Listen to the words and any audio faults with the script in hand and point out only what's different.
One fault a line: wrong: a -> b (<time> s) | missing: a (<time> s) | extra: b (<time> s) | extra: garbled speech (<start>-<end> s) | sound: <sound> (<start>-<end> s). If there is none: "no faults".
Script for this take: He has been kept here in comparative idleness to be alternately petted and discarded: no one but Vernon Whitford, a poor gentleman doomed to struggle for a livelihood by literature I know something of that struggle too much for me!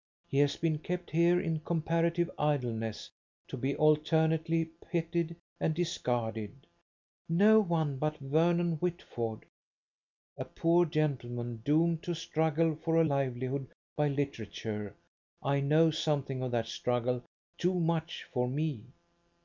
no faults